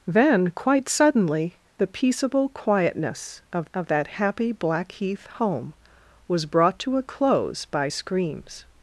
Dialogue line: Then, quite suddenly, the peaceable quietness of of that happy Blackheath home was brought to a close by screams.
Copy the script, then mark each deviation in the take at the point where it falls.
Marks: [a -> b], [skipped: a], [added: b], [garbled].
Then, quite suddenly, the peaceable quietness of of that happy Blackheath home was brought to a close by screams.